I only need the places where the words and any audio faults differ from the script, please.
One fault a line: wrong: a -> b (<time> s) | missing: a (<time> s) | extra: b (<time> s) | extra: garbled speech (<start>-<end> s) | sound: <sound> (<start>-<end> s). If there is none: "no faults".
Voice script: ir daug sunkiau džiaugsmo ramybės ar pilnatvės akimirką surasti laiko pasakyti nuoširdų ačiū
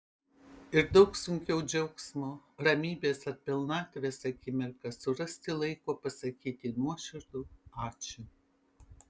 no faults